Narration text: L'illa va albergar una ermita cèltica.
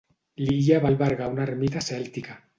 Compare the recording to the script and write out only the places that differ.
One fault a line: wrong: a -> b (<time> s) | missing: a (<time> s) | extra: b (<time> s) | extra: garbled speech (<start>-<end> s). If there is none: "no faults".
no faults